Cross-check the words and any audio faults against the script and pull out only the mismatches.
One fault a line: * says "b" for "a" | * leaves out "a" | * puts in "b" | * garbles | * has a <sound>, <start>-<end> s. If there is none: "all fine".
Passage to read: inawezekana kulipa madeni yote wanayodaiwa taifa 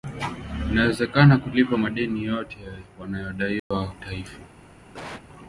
* has a dropout, 3.6-3.7 s
* has a cough, 4.9-5.3 s